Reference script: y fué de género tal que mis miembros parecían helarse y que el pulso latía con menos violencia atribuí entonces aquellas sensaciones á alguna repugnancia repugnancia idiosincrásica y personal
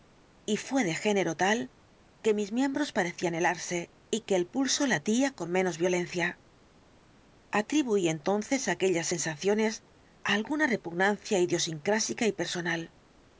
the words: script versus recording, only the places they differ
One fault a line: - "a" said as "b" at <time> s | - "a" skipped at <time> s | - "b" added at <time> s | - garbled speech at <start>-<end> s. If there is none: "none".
- "repugnancia" skipped at 11.4 s